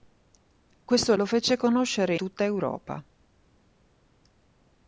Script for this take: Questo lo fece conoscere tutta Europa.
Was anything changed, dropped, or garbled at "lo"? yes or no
no